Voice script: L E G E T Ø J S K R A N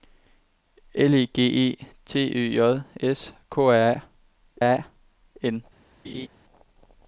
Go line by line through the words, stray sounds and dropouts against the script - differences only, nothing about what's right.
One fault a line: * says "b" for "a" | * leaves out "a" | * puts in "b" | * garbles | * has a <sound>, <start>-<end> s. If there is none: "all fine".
* puts in "A"
* has a laugh, 6.0-6.3 s